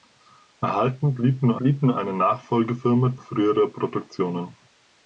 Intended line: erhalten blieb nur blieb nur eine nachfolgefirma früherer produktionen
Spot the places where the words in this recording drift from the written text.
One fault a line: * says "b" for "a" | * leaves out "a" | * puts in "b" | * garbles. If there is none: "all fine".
all fine